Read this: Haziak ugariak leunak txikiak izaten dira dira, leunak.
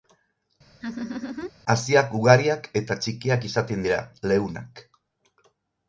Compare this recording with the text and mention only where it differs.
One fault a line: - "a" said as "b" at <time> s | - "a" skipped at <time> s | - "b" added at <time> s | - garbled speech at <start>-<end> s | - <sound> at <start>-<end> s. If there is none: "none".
- laugh at 0.8-1.5 s
- "leunak" said as "eta" at 2.8 s
- "dira" skipped at 4.0 s